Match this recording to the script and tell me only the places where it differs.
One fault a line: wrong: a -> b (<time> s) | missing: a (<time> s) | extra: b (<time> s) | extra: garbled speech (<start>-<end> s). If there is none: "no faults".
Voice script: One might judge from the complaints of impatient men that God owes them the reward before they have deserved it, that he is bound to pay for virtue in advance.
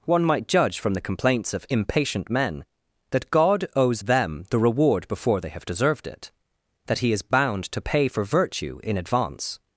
no faults